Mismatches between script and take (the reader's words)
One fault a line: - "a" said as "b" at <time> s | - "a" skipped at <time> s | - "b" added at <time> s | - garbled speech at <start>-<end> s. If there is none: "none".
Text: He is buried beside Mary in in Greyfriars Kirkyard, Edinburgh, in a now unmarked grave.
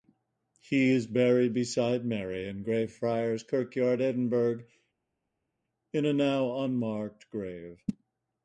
- "in" skipped at 2.6 s